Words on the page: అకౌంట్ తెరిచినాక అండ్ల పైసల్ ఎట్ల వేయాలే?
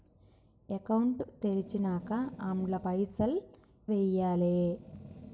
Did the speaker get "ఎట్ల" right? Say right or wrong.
wrong